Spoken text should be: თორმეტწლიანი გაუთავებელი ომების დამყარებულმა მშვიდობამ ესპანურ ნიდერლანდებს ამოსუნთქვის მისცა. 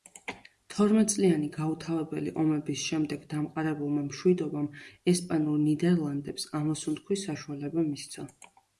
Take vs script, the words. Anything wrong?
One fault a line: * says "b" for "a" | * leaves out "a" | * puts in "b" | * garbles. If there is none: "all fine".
* puts in "შემდეგ"
* puts in "საშუალება"